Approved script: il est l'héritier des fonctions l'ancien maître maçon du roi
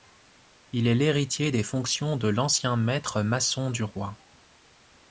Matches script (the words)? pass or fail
fail